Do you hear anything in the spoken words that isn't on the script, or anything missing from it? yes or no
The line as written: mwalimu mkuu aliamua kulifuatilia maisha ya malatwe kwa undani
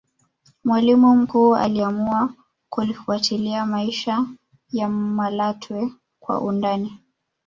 no